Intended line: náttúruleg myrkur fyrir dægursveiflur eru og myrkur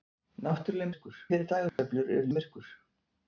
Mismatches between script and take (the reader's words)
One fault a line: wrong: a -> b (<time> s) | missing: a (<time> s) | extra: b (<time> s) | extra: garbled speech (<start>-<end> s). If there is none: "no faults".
no faults